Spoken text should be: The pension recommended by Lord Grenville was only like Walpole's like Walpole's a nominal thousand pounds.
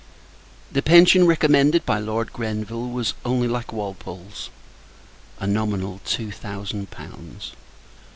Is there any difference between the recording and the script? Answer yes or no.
yes